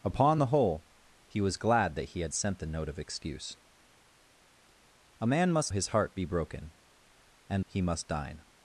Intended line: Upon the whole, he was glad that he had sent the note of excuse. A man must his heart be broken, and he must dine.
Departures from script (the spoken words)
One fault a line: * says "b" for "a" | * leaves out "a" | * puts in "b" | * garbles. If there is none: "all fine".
all fine